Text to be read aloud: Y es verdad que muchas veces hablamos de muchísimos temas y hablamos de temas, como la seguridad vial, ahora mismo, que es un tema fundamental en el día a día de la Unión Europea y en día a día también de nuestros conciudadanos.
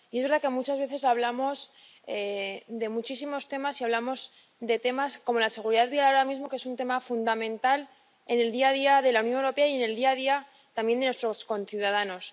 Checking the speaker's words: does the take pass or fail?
fail